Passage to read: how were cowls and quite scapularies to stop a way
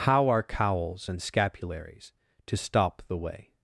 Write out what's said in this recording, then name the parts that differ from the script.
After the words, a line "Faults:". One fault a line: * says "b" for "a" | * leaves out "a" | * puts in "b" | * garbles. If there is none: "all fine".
how are cowls and scapularies to stop the way
Faults:
* says "are" for "were"
* leaves out "quite"
* says "the" for "a"